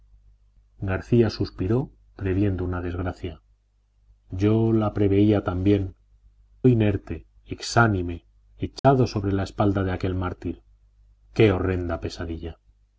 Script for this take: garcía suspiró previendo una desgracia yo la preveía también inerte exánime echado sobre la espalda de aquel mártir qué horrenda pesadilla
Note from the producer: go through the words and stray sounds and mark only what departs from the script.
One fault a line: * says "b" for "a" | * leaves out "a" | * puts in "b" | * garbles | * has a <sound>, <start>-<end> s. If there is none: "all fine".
* has a dropout, 8.8-8.8 s